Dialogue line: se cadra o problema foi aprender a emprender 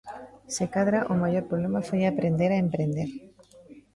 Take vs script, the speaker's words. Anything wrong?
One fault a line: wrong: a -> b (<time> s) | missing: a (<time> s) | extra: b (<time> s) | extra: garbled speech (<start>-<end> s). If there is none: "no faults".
extra: maior (1.2 s)